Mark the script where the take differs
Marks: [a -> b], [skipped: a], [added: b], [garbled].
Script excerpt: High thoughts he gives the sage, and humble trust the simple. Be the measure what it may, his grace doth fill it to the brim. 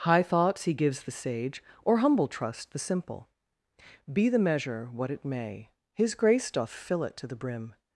High thoughts he gives the sage, [and -> or] humble trust the simple. Be the measure what it may, his grace doth fill it to the brim.